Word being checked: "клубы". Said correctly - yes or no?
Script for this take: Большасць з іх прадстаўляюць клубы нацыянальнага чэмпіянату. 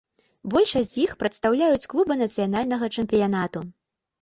yes